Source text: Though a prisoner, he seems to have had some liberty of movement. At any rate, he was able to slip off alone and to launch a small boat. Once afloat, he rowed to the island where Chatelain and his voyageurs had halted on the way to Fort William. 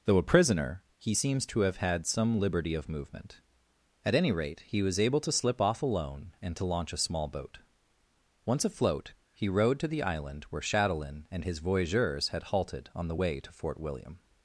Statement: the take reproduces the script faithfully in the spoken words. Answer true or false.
true